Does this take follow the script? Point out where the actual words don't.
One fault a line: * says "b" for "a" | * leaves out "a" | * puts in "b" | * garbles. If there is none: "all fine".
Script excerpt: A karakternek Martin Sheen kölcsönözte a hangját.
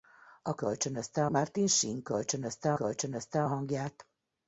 * says "kölcsönözte" for "karakternek"
* puts in "kölcsönözte"